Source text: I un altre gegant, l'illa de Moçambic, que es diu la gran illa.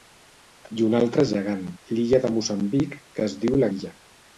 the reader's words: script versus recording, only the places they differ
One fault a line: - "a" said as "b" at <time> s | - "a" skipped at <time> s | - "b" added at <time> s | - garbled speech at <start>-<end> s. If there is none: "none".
- "gran" skipped at 3.7 s